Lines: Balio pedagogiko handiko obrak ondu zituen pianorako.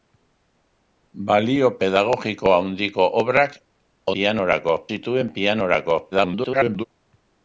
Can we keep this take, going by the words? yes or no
no